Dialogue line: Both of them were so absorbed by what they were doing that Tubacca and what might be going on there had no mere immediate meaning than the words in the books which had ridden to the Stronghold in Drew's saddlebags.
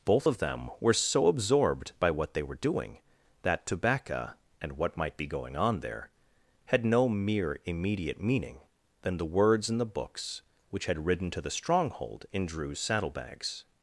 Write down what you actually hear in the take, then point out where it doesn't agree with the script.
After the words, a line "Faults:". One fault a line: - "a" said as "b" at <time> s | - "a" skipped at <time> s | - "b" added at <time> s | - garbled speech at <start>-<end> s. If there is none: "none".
Both of them were so absorbed by what they were doing that Tubacca and what might be going on there had no mere immediate meaning than the words in the books which had ridden to the Stronghold in Drew's saddlebags.
Faults:
none